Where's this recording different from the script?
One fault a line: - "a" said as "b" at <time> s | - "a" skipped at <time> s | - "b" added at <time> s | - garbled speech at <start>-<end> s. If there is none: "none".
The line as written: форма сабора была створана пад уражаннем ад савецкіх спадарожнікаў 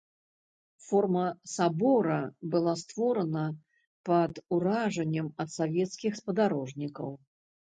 none